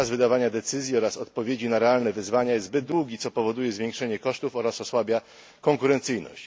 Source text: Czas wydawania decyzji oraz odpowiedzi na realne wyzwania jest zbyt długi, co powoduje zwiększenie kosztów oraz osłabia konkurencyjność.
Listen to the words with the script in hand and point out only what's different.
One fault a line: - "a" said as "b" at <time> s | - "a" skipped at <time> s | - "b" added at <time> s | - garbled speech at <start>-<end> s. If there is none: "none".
none